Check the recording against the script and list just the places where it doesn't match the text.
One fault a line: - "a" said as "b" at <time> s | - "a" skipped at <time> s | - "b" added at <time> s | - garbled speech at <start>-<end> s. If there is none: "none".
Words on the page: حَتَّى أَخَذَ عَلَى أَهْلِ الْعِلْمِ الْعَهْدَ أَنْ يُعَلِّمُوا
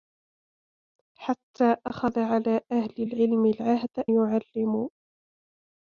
- "أَنْ" skipped at 4.1 s